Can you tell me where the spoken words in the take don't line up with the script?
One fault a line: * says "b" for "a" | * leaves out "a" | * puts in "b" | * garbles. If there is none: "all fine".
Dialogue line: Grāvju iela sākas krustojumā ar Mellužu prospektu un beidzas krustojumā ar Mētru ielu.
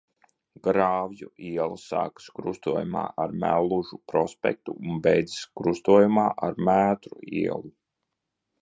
all fine